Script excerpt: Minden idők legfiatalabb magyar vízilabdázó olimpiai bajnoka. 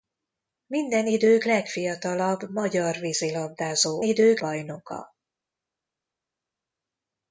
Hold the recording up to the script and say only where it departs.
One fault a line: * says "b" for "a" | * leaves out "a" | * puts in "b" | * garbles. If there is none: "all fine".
* says "idők" for "olimpiai"